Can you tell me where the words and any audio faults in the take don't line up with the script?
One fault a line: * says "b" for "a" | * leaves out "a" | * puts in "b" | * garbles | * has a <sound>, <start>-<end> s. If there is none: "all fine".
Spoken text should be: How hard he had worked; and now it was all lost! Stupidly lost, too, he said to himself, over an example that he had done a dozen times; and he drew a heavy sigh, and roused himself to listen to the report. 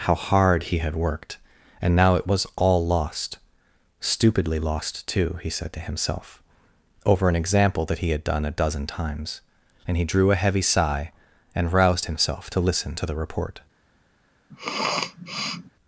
* has a sniff, 14.5-15.7 s